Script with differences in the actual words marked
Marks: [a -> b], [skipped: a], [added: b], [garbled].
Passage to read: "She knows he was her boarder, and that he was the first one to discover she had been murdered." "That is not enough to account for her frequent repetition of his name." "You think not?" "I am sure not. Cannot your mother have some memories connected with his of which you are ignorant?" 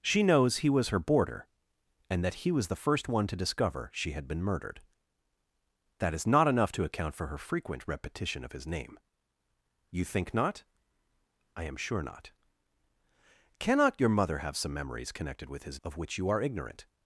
"She knows he was her boarder, and that he was the first one to discover she had been murdered." "That is not enough to account for her frequent repetition of his name." "You think not?" "I am sure not. Cannot your mother have some memories connected with his of which you are ignorant?"